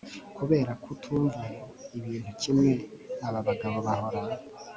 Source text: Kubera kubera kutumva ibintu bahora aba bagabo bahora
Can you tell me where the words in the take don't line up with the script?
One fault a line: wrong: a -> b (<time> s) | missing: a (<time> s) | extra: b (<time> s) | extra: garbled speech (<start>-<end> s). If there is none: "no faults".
missing: kubera (0.7 s)
wrong: bahora -> kimwe (2.4 s)